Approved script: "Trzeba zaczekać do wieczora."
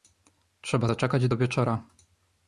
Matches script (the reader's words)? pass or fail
pass